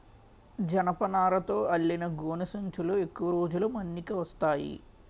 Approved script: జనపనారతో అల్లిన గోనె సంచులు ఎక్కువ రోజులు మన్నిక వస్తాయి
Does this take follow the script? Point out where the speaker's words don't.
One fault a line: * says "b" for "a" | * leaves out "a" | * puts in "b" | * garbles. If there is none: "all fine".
all fine